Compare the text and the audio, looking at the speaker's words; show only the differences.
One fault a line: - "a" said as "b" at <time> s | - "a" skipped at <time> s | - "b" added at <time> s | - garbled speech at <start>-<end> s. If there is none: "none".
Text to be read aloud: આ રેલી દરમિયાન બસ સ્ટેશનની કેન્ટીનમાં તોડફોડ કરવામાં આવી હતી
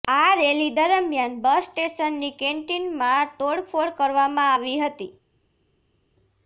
none